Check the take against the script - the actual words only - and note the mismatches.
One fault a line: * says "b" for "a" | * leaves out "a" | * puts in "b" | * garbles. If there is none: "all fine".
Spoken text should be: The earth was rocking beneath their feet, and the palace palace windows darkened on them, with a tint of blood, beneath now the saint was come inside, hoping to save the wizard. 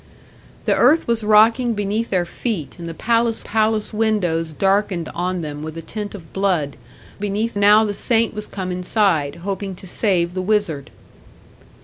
all fine